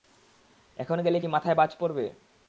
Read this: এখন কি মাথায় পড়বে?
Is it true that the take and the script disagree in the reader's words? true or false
true